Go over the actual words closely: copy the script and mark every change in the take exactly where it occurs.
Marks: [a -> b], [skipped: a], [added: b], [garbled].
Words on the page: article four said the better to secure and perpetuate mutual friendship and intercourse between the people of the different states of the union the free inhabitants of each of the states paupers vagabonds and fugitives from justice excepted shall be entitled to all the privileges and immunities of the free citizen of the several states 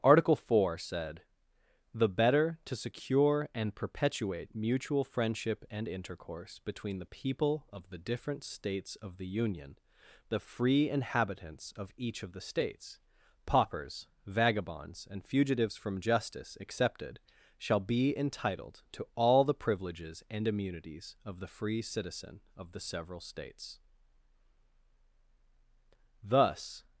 article four said the better to secure and perpetuate mutual friendship and intercourse between the people of the different states of the union the free inhabitants of each of the states paupers vagabonds and fugitives from justice excepted shall be entitled to all the privileges and immunities of the free citizen of the several states [added: thus]